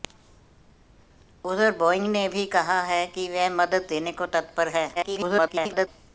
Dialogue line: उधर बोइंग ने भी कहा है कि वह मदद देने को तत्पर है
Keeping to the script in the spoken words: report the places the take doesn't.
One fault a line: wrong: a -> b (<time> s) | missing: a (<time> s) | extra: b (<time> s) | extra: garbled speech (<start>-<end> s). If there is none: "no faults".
extra: garbled speech (4.9-5.9 s)